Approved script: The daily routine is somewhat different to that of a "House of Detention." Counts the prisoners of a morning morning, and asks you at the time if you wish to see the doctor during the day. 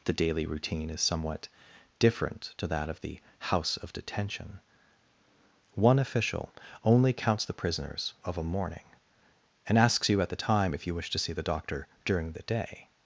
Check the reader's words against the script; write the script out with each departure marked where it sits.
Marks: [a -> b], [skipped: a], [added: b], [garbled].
The daily routine is somewhat different to that of [a -> the] "House of Detention." [added: One official only] Counts the prisoners of a morning [skipped: morning,] and asks you at the time if you wish to see the doctor during the day.